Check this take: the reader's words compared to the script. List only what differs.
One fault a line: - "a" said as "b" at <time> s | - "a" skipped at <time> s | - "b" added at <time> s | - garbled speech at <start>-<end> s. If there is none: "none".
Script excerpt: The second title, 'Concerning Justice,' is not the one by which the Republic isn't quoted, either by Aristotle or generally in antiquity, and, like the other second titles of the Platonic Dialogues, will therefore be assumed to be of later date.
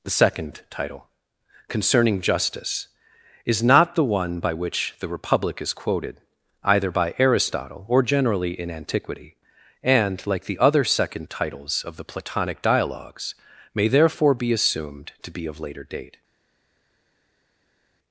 - "isn't" said as "is" at 5.6 s
- "will" said as "may" at 13.8 s